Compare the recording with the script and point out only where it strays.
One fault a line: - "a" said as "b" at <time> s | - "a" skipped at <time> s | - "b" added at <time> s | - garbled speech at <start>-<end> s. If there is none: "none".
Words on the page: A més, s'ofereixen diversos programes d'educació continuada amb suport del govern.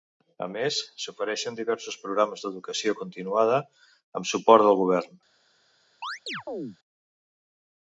none